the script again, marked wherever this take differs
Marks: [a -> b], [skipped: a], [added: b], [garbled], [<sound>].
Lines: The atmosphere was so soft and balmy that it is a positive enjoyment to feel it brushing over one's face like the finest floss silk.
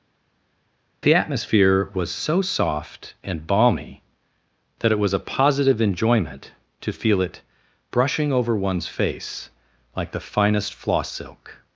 The atmosphere was so soft and balmy that it [is -> was] a positive enjoyment to feel it brushing over one's face like the finest floss silk.